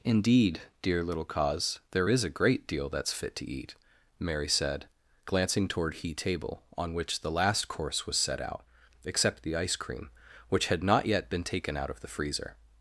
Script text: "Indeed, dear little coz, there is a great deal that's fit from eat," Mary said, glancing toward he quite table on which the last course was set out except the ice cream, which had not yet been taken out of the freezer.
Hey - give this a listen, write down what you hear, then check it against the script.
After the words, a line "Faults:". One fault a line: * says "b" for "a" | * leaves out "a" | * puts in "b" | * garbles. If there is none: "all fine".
"Indeed, dear little coz, there is a great deal that's fit to eat," Mary said, glancing toward he table on which the last course was set out except the ice cream, which had not yet been taken out of the freezer.
Faults:
* says "to" for "from"
* leaves out "quite"